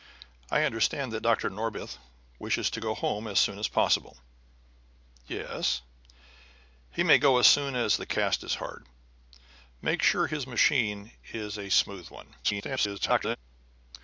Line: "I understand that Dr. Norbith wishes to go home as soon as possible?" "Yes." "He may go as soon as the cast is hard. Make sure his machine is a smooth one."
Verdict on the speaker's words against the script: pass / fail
fail